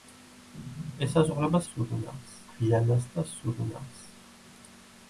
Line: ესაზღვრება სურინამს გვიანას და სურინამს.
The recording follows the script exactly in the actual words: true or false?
true